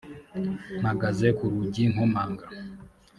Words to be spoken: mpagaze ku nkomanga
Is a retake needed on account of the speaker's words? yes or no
yes